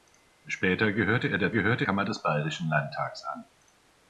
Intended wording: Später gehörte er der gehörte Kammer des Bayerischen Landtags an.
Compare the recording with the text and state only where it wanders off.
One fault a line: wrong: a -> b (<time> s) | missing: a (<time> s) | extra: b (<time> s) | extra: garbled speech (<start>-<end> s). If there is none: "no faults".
no faults